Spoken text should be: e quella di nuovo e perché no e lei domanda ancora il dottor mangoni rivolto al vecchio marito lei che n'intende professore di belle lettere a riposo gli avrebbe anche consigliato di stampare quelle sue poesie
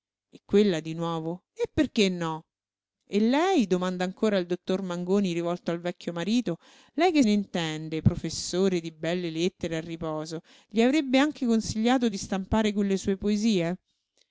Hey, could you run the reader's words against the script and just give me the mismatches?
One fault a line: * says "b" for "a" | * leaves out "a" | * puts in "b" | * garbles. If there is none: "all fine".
all fine